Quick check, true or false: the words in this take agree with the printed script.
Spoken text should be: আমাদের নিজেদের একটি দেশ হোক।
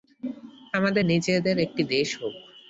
true